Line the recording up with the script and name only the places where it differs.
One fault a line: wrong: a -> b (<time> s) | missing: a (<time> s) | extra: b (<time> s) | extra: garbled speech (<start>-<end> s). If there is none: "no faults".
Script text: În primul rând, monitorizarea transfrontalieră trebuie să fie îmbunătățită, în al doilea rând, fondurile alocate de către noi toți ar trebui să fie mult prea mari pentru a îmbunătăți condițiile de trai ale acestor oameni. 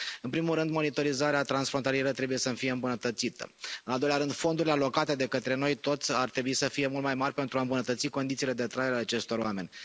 wrong: prea -> mai (7.0 s)